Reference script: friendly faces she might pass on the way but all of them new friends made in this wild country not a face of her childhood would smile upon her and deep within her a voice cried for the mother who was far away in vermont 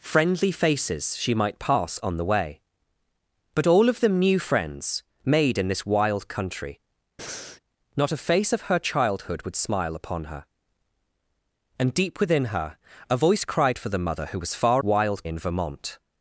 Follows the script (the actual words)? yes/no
no